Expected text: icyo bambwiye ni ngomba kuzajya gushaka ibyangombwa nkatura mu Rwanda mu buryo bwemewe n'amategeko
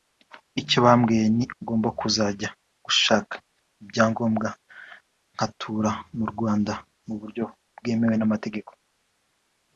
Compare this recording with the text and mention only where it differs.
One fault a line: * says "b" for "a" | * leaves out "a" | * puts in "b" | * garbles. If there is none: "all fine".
all fine